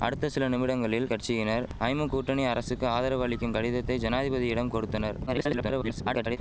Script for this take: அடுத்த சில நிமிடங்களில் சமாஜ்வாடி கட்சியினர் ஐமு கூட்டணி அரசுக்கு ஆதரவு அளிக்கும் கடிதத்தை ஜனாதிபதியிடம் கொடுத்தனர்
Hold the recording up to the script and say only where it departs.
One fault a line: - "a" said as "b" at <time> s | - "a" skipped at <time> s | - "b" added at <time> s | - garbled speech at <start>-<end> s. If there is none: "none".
- "சமாஜ்வாடி" skipped at 1.1 s
- garbled speech at 5.3-6.4 s